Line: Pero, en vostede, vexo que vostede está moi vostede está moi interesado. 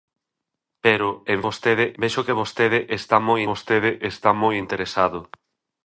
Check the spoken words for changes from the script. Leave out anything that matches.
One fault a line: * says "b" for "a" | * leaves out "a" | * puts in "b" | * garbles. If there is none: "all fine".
all fine